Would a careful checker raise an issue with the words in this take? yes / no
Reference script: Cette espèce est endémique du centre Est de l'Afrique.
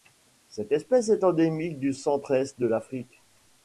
no